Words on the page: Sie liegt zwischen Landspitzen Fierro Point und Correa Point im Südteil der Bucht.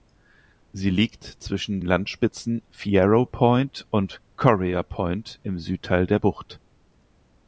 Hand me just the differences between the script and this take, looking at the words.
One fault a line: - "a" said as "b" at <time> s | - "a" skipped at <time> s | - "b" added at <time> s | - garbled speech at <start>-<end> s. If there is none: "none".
none